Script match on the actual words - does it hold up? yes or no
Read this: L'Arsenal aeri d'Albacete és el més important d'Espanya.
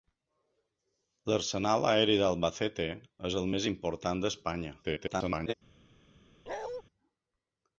no